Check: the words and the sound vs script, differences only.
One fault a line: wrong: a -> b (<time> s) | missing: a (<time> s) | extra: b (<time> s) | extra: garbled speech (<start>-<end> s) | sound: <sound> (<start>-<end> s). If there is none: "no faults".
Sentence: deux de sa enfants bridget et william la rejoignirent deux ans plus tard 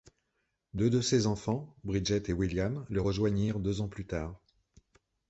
wrong: sa -> ses (1.0 s)
wrong: la -> le (2.9 s)